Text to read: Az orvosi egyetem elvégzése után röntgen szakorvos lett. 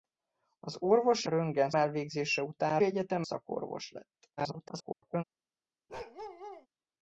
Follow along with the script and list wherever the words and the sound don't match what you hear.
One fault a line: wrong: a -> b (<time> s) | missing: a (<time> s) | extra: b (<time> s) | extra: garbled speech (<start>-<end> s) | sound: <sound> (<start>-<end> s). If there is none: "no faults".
wrong: egyetem -> röntgen (1.2 s)
wrong: röntgen -> egyetem (2.8 s)
extra: garbled speech (4.4-5.2 s)
sound: bark (5.9-6.7 s)